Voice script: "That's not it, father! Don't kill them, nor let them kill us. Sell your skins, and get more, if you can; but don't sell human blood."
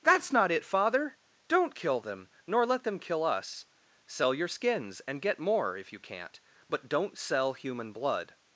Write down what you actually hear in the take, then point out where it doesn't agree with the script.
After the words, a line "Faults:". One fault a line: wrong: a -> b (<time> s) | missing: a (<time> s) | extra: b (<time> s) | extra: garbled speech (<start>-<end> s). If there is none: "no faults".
"That's not it, father! Don't kill them, nor let them kill us. Sell your skins, and get more, if you can't; but don't sell human blood."
Faults:
wrong: can -> can't (6.0 s)